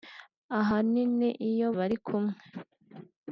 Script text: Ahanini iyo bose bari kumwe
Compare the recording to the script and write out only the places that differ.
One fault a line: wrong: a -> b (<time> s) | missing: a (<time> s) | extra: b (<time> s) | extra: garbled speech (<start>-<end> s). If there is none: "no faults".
missing: bose (1.7 s)